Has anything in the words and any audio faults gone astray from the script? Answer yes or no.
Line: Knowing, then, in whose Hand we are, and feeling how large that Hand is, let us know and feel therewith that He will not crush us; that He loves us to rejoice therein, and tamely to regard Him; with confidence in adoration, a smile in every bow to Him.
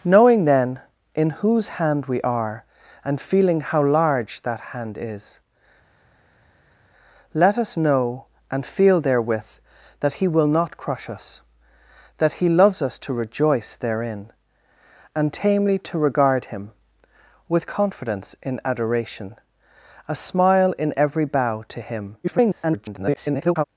yes